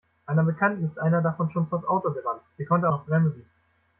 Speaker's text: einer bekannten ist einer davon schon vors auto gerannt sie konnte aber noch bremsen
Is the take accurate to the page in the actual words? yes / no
no